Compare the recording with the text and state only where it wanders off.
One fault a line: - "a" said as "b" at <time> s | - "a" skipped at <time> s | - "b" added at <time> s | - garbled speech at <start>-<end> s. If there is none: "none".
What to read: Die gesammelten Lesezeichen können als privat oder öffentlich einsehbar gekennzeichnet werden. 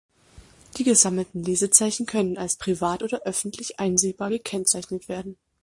none